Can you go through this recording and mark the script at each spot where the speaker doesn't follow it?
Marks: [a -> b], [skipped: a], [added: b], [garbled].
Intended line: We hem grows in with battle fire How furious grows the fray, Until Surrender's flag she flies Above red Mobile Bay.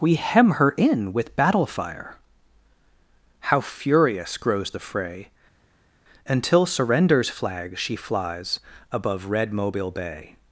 We hem [grows -> her] in with battle fire How furious grows the fray, Until Surrender's flag she flies Above red Mobile Bay.